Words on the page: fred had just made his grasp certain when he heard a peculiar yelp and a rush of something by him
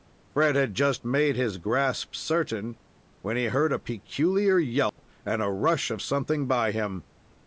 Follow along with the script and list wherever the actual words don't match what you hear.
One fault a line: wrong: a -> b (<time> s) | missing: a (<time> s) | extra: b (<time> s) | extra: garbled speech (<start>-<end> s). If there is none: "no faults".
no faults